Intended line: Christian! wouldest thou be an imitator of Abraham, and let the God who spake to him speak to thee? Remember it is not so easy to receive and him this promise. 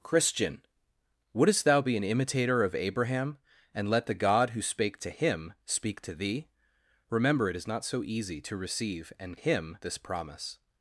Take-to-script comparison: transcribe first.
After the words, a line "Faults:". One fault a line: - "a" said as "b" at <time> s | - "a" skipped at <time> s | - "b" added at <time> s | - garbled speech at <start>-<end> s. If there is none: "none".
Christian! wouldest thou be an imitator of Abraham, and let the God who spake to him speak to thee? Remember it is not so easy to receive and him this promise.
Faults:
none